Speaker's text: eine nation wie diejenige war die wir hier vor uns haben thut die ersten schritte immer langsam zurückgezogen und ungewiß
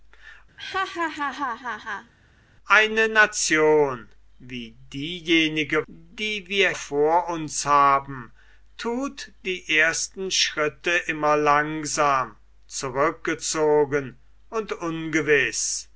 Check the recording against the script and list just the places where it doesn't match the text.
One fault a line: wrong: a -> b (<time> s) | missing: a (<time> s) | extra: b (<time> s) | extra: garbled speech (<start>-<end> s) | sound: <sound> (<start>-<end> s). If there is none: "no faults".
sound: laugh (0.6-2.1 s)
missing: war (5.9 s)
missing: hier (6.7 s)